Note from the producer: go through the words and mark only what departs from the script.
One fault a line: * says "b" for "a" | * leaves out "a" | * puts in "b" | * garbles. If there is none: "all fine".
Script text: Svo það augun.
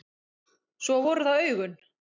* puts in "voru"